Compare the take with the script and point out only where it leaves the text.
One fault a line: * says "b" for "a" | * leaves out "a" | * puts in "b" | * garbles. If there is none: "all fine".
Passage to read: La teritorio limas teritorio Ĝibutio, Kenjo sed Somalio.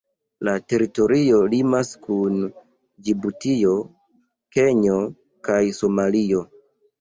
* says "kun" for "teritorio"
* says "kaj" for "sed"